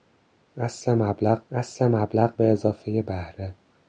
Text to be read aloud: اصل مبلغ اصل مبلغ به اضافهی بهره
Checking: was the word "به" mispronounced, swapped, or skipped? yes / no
no